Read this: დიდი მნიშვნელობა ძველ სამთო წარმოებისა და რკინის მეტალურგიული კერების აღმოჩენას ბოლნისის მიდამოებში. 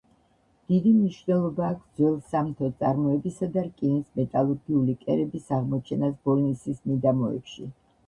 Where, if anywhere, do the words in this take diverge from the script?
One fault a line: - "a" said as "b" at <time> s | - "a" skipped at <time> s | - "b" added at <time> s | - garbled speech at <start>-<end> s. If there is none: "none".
- "აქვს" added at 1.7 s